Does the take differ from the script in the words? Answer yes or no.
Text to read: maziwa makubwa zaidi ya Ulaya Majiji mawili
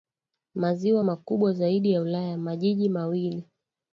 no